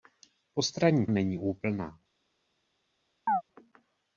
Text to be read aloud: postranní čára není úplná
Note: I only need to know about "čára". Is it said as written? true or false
false